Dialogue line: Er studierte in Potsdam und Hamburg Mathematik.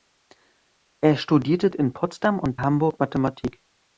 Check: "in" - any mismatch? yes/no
no